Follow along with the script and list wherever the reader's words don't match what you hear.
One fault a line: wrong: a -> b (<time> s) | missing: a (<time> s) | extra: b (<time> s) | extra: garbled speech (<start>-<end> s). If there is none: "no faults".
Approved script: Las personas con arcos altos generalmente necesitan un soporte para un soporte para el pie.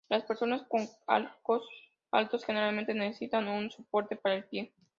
missing: un soporte para (4.4 s)